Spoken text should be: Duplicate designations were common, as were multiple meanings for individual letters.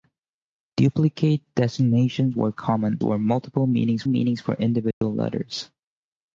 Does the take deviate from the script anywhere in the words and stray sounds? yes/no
yes